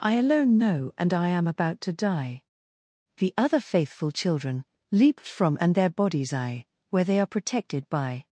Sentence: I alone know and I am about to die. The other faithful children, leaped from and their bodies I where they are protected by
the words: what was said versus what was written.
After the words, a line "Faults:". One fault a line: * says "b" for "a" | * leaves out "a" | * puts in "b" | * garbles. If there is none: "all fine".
I alone know and I am about to die. The other faithful children, leaped from and their bodies I where they are protected by
Faults:
all fine